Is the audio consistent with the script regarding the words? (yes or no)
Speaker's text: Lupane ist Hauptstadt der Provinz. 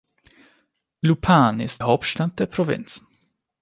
yes